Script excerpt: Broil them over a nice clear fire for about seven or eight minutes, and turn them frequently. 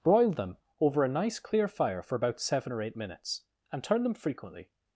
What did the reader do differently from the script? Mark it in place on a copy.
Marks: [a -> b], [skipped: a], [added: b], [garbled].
Broil them over a nice clear fire for about seven or eight minutes, and turn them frequently.